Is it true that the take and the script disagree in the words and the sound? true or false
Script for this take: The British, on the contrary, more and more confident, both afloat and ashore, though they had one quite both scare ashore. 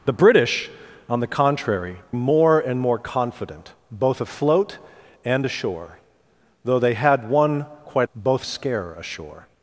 false